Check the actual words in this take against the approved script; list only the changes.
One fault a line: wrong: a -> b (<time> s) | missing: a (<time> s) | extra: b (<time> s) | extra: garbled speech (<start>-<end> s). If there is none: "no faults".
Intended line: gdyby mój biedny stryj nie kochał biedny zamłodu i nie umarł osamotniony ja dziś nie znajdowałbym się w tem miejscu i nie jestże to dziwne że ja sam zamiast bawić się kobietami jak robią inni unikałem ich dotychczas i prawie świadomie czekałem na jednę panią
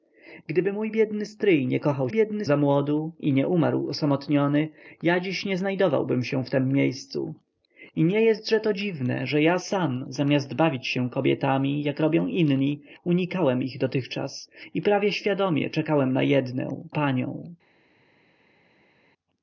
no faults